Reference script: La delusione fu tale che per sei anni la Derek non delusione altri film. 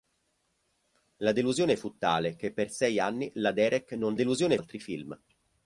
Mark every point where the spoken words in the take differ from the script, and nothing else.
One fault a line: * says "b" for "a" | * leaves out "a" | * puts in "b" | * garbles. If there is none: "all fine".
all fine